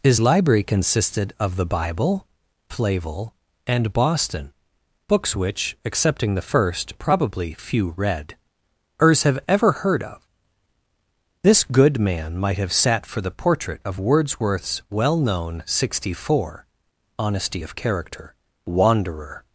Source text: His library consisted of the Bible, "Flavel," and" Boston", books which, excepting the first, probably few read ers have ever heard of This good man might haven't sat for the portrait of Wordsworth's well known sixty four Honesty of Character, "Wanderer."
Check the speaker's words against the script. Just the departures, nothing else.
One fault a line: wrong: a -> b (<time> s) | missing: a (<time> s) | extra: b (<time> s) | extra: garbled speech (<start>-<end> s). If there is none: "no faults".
wrong: haven't -> have (12.6 s)